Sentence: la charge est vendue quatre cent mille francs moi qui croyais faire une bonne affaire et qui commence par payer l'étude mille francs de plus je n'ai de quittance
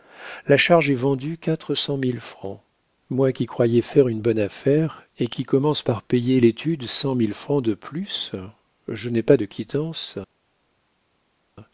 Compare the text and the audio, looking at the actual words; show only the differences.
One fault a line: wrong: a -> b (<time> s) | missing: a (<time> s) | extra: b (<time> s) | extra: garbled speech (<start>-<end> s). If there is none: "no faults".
extra: cent (6.9 s)
extra: pas (9.2 s)